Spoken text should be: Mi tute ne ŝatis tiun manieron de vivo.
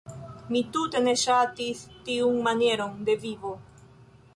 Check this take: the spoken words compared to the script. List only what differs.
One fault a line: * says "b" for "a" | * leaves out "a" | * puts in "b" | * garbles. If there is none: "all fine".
all fine